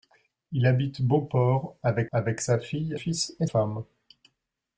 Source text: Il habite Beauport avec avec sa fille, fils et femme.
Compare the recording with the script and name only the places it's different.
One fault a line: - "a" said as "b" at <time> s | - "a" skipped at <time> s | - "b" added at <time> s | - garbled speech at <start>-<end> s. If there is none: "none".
none